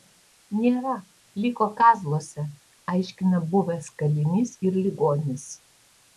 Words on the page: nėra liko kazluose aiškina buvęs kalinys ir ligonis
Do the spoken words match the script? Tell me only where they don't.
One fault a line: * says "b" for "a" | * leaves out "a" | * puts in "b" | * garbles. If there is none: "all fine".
all fine